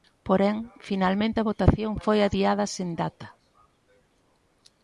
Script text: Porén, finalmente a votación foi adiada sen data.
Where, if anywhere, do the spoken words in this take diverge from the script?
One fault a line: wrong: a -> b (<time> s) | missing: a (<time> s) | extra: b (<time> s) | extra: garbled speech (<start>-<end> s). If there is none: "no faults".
no faults